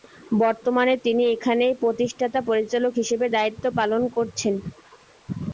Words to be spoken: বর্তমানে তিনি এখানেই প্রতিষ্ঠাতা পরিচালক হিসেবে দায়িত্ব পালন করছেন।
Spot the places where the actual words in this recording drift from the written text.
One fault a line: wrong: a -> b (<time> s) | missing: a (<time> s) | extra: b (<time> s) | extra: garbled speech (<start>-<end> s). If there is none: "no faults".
no faults